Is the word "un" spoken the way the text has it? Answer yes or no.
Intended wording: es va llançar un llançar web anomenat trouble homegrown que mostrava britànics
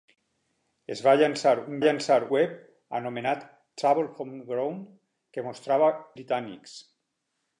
yes